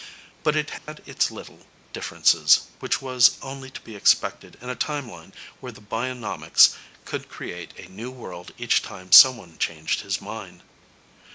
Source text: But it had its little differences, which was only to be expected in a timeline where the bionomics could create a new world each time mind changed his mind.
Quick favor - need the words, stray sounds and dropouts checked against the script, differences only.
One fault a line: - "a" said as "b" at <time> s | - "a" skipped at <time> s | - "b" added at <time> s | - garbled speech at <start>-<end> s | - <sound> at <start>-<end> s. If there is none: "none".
- dropout at 0.8-0.9 s
- "mind" said as "someone" at 9.1 s